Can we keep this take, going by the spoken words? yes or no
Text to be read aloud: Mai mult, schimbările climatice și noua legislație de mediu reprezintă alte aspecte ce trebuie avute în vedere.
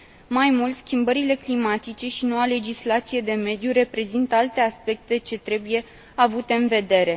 yes